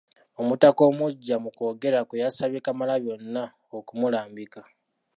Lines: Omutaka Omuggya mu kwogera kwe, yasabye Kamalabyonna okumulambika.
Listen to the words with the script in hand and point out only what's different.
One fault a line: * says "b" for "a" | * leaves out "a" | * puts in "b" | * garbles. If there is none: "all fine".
all fine